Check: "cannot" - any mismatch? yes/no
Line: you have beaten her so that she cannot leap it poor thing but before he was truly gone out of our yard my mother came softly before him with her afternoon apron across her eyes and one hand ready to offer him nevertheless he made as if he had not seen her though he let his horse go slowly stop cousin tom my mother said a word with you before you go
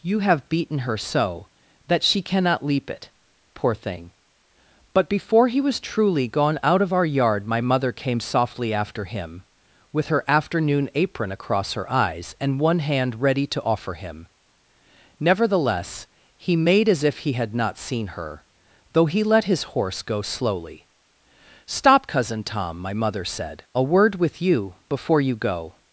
no